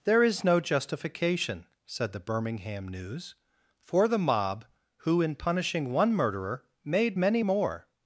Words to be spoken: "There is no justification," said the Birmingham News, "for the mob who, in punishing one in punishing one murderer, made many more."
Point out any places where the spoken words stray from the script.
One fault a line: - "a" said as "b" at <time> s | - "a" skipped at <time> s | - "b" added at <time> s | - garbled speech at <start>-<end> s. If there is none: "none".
- "in punishing one" skipped at 6.1 s